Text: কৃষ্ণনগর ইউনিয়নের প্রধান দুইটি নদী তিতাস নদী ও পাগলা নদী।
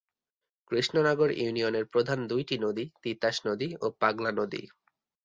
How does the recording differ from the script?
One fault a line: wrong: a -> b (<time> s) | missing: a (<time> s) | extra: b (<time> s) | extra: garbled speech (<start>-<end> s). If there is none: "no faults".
no faults